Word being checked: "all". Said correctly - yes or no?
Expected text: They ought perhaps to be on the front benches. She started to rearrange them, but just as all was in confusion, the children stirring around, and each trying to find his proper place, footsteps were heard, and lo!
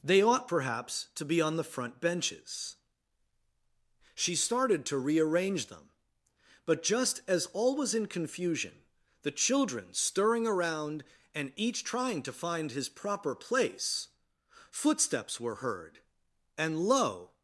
yes